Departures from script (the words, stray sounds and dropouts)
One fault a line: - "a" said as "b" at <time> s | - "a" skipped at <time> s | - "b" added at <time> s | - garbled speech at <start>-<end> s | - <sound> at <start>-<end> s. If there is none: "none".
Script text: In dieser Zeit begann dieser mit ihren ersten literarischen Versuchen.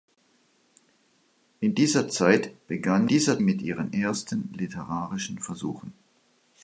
none